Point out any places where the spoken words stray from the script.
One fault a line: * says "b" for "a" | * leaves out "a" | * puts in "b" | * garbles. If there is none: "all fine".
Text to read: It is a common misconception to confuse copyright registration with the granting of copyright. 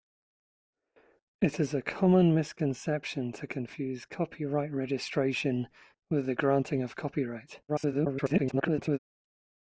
* garbles